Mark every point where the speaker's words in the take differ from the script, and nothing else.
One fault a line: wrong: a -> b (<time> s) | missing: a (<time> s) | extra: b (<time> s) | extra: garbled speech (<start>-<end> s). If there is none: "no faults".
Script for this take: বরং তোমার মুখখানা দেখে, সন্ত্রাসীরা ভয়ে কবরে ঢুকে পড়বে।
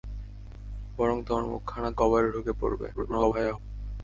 missing: দেখে সন্ত্রাসীরা ভয়ে (1.9 s)
extra: garbled speech (2.9-3.6 s)